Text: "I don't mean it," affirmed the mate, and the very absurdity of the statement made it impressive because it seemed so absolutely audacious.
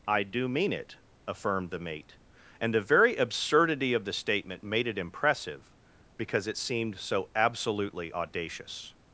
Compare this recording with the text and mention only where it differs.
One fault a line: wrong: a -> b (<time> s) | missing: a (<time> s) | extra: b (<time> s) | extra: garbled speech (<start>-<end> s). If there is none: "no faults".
wrong: don't -> do (0.2 s)